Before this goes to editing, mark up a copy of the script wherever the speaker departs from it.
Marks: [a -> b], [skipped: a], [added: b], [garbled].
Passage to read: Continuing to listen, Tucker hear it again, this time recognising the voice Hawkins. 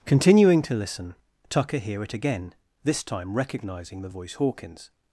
Continuing to listen, Tucker hear it again, this time recognising the voice Hawkins.